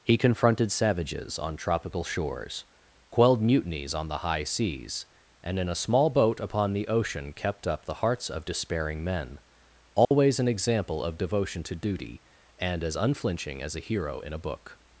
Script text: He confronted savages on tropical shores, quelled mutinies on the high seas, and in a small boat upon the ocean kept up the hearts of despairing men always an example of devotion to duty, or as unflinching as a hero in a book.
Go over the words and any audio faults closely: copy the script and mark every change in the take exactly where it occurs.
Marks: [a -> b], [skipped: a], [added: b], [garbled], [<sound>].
He confronted savages on tropical shores, quelled mutinies on the high seas, and in a small boat upon the ocean kept up the hearts of despairing men always [dropout] an example of devotion to duty, [or -> and] as unflinching as a hero in a book.